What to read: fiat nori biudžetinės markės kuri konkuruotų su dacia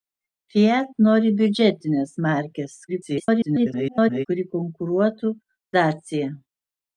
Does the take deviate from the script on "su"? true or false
true